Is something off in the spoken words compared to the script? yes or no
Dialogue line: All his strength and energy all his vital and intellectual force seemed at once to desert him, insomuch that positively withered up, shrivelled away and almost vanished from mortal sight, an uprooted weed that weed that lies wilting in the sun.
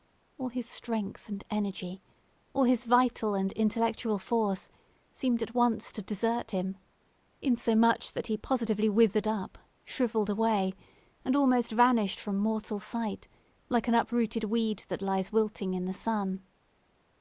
yes